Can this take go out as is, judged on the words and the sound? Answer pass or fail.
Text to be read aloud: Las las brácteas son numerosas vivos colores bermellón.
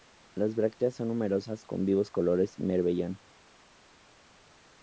fail